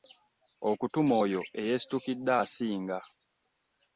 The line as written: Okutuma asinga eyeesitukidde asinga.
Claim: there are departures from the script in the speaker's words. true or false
true